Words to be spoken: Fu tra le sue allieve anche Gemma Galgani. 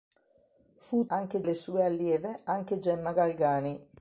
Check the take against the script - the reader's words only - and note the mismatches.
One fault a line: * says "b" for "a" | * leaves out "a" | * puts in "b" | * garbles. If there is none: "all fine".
* says "anche" for "tra"